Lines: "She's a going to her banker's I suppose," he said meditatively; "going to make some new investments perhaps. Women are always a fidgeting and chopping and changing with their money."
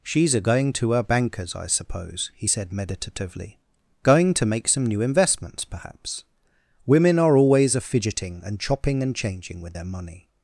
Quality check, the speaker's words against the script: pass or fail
pass